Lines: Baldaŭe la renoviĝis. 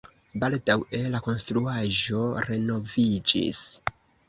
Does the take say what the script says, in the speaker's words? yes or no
no